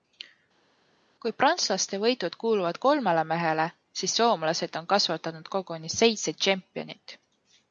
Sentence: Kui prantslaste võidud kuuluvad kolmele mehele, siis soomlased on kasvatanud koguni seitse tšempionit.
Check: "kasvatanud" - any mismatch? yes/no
no